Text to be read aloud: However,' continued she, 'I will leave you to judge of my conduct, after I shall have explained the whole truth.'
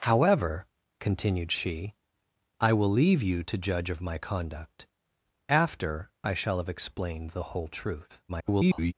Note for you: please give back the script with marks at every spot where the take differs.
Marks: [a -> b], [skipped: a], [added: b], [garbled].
However,' continued she, 'I will leave you to judge of my conduct, after I shall have explained the whole truth.' [garbled]